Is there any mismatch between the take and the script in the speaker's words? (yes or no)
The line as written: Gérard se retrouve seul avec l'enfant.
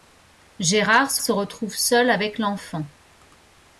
yes